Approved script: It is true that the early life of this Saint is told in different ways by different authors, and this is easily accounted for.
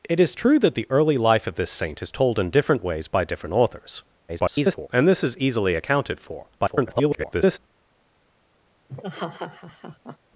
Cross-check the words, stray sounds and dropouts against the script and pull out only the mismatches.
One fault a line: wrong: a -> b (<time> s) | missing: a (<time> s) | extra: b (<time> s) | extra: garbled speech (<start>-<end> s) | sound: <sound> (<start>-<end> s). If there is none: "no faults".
extra: garbled speech (4.3-4.9 s)
extra: garbled speech (6.6-7.6 s)
sound: laugh (8.9-10.2 s)